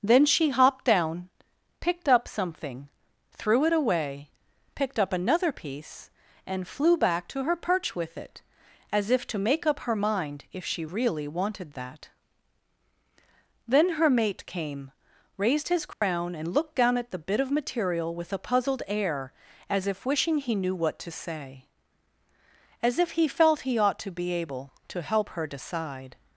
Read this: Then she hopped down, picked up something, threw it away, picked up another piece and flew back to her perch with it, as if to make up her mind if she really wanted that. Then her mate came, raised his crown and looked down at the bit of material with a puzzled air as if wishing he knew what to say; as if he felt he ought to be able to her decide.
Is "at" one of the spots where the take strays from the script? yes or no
no